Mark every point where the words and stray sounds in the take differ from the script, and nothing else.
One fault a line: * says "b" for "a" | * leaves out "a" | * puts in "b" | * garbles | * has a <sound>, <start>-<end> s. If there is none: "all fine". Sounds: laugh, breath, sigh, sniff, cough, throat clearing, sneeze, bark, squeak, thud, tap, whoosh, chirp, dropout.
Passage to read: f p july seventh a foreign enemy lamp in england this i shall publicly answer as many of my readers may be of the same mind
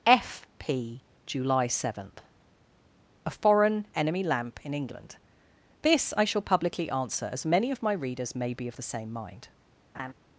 * has a laugh, 9.9-10.1 s